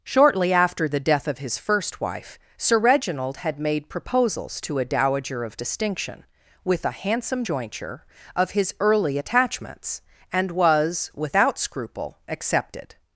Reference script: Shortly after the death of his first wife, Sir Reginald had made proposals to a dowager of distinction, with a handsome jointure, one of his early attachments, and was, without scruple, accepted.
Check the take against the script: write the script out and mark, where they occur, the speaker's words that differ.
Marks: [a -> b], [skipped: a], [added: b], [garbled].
Shortly after the death of his first wife, Sir Reginald had made proposals to a dowager of distinction, with a handsome jointure, [skipped: one] of his early attachments, and was, without scruple, accepted.